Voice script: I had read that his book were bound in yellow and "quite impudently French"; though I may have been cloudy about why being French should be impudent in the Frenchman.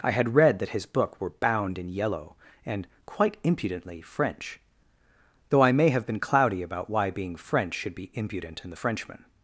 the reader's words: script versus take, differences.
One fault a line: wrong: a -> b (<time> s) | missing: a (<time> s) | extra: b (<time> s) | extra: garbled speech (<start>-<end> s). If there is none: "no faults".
no faults